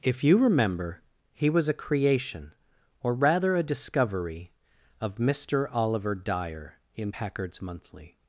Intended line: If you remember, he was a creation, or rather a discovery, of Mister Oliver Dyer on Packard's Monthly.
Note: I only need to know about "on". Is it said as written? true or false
false